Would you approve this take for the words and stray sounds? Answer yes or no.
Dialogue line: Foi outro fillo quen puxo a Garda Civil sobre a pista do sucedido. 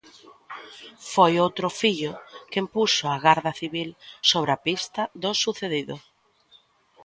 yes